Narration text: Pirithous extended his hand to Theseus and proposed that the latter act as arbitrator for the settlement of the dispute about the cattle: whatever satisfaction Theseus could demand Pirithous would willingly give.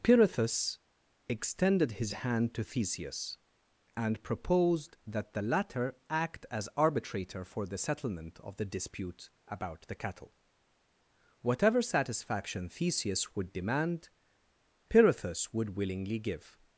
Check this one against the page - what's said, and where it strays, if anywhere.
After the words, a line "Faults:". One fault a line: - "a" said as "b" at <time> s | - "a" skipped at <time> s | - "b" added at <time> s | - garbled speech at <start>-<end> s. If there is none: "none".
Pirithous extended his hand to Theseus and proposed that the latter act as arbitrator for the settlement of the dispute about the cattle: whatever satisfaction Theseus would demand Pirithous would willingly give.
Faults:
- "could" said as "would" at 13.3 s